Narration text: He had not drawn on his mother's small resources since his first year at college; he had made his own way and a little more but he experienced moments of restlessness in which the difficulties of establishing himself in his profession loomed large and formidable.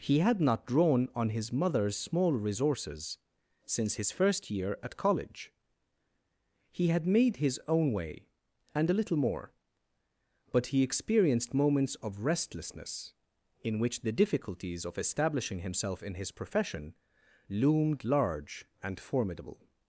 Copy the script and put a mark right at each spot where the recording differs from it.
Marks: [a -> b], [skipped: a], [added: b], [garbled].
He had not drawn on his mother's small resources since his first year at college; he had made his own way and a little more but he experienced moments of restlessness in which the difficulties of establishing himself in his profession loomed large and formidable.